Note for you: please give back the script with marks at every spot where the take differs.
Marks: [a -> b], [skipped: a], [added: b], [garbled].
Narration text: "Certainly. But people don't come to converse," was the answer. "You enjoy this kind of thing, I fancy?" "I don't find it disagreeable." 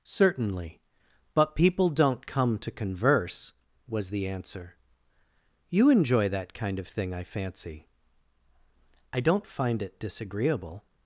"Certainly. But people don't come to converse," was the answer. "You enjoy [this -> that] kind of thing, I fancy?" "I don't find it disagreeable."